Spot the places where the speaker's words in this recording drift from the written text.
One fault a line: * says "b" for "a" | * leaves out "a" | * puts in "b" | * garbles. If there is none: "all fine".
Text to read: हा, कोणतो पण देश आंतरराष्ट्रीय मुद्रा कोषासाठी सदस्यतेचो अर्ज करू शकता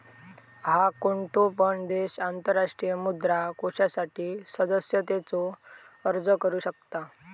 all fine